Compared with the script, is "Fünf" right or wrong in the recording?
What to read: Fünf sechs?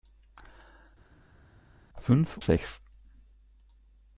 right